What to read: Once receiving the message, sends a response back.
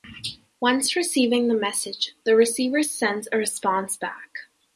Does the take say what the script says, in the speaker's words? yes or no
no